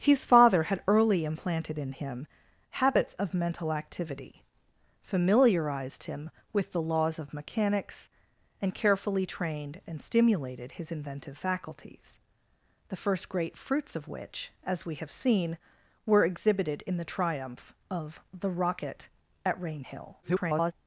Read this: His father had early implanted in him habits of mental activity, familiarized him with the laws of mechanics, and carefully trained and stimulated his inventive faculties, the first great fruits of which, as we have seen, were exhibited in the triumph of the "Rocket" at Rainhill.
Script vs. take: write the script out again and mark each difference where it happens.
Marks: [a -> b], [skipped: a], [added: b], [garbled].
His father had early implanted in him habits of mental activity, familiarized him with the laws of mechanics, and carefully trained and stimulated his inventive faculties, the first great fruits of which, as we have seen, were exhibited in the triumph of the "Rocket" at Rainhill. [garbled]